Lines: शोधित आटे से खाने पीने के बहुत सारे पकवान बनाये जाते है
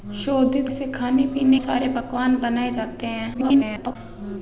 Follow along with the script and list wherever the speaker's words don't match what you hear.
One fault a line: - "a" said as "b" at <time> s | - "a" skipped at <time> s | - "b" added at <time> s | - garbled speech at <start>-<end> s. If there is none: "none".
- "आटे" skipped at 0.7 s
- "के बहुत" skipped at 1.6 s
- garbled speech at 3.3-4.0 s